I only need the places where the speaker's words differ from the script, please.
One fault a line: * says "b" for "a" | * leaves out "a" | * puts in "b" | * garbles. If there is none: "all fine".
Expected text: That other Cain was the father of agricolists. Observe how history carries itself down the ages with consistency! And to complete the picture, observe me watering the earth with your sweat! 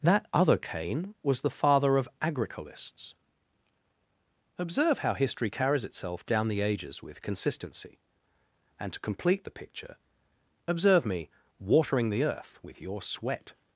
all fine